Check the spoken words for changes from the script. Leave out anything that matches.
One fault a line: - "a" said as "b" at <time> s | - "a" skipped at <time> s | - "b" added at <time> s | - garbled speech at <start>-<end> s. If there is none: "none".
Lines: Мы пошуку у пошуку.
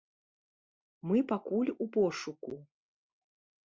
- "пошуку" said as "пакуль" at 1.3 s